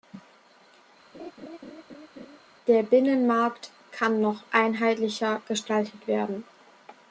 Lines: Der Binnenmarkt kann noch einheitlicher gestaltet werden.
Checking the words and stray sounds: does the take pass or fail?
fail